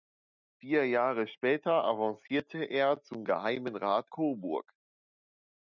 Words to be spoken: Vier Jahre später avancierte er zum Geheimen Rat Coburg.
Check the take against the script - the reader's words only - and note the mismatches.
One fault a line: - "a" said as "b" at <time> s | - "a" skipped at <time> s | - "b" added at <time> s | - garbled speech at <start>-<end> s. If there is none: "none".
none